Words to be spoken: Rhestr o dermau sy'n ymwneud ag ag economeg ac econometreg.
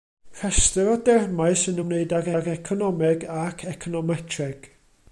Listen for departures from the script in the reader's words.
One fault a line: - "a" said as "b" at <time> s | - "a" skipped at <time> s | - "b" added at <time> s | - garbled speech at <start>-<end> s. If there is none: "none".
none